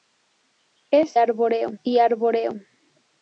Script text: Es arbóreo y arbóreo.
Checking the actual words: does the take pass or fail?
pass